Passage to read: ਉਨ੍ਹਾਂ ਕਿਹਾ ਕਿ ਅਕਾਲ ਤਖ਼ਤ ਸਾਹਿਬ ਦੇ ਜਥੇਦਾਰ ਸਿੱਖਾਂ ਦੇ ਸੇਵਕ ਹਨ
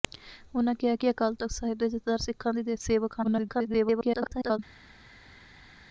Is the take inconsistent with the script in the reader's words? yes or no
yes